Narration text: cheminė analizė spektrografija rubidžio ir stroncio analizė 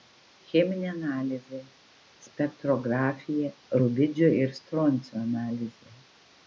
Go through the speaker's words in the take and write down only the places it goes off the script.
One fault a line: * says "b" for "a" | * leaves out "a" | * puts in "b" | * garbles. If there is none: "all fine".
all fine